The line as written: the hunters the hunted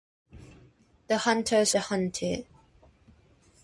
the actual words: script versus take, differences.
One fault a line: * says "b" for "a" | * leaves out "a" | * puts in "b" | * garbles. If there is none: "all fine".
all fine